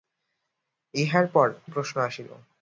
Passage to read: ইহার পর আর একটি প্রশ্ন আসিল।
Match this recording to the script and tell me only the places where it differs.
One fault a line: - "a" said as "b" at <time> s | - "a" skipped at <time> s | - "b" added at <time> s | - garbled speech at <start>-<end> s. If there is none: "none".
- "আর একটি" skipped at 1.5 s